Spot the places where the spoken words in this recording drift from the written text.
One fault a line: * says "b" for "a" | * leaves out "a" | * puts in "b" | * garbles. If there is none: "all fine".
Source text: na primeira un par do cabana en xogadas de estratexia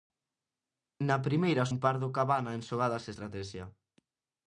all fine